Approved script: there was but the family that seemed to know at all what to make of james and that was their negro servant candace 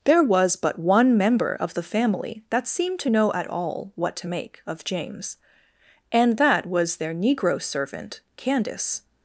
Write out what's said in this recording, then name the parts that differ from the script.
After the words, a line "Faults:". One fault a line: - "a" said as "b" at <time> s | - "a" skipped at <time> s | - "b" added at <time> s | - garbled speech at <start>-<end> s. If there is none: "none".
there was but one member of the family that seemed to know at all what to make of james and that was their negro servant candace
Faults:
- "one member of" added at 0.8 s